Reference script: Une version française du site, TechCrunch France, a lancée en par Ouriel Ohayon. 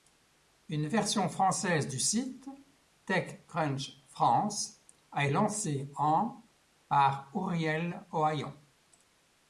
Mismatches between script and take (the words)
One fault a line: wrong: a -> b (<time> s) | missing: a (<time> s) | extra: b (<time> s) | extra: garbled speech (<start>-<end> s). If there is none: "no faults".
no faults